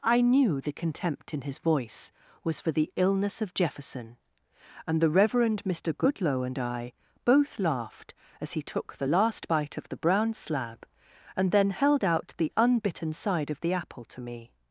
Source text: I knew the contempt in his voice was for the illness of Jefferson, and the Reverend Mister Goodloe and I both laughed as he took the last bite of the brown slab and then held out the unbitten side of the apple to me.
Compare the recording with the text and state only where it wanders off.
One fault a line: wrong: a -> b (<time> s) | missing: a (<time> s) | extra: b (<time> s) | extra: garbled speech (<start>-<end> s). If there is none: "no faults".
no faults